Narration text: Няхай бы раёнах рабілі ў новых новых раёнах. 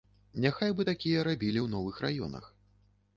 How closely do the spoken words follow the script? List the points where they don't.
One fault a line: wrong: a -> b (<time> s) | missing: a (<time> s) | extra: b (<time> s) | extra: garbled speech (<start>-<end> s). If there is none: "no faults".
wrong: раёнах -> такія (0.9 s)
missing: новых (2.0 s)